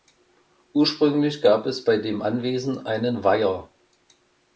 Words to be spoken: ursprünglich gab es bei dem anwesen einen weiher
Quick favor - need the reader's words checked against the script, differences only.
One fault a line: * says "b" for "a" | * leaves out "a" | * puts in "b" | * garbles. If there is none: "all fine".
all fine